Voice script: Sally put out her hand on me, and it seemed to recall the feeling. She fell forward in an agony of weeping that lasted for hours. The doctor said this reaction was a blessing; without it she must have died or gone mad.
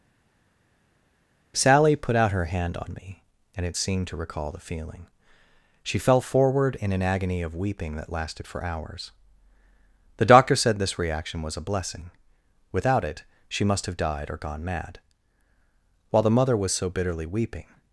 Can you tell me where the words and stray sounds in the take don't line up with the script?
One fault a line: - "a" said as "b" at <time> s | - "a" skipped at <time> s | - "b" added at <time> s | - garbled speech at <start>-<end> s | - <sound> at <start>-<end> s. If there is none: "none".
- "While the mother was so bitterly weeping" added at 16.1 s